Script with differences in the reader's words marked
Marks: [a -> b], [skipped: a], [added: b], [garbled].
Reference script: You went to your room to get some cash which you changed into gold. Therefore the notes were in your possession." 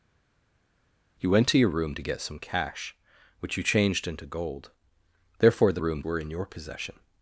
You went to your room to get some cash which you changed into gold. Therefore the [notes -> room] were in your possession."